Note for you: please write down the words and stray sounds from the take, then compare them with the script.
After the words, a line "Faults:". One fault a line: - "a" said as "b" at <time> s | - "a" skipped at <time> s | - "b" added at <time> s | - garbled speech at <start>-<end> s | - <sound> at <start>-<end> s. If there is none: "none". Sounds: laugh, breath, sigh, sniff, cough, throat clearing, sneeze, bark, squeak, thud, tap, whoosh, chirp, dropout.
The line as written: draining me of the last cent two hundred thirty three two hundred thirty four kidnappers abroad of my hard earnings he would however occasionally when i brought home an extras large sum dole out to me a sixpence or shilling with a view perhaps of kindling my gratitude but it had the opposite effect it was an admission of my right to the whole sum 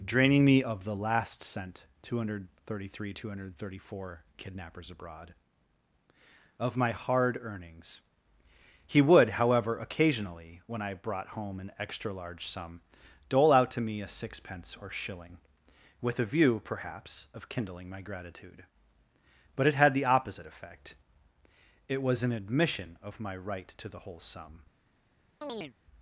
draining me of the last cent two hundred thirty three two hundred thirty four kidnappers abroad of my hard earnings he would however occasionally when i brought home an extra large sum dole out to me a sixpence or shilling with a view perhaps of kindling my gratitude but it had the opposite effect it was an admission of my right to the whole sum
Faults:
- "extras" said as "extra" at 11.8 s
- chirp at 25.4-25.7 s